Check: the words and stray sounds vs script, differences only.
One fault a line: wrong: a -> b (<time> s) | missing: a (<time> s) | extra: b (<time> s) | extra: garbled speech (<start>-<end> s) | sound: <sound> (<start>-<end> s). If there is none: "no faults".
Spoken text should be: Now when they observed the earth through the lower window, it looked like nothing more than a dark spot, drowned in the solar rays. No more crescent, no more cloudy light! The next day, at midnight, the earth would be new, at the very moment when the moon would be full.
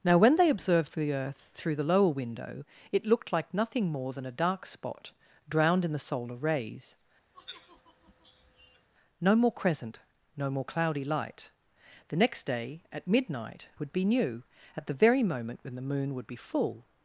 sound: sigh (7.3-8.9 s)
missing: the earth (13.7 s)